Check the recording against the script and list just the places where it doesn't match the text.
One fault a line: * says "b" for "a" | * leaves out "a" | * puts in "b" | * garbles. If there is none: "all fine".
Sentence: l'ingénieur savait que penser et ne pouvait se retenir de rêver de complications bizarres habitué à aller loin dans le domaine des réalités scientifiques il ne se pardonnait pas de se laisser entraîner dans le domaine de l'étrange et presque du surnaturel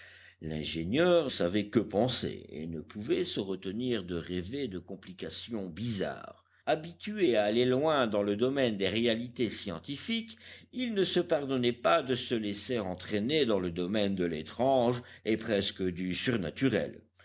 all fine